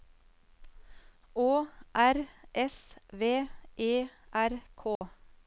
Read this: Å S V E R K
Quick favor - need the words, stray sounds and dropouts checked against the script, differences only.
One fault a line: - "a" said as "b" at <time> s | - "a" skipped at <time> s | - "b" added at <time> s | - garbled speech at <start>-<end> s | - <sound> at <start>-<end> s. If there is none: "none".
- "R" added at 1.9 s
- dropout at 5.0-5.0 s